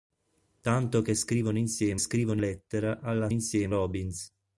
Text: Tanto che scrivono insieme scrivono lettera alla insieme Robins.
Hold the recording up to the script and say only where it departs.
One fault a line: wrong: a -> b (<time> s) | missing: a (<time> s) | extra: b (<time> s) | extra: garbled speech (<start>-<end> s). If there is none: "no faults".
no faults